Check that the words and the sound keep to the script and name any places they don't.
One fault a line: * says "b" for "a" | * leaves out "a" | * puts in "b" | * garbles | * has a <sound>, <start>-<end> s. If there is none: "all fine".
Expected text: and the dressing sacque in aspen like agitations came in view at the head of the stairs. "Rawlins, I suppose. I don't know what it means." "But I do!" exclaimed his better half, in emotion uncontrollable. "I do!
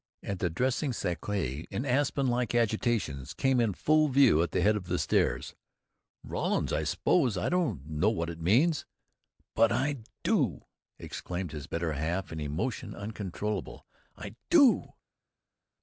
* puts in "full"